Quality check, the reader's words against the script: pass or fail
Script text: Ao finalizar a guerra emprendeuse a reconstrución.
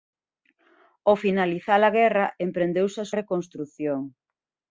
pass